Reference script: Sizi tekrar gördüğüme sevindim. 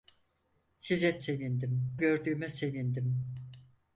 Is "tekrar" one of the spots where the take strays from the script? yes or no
yes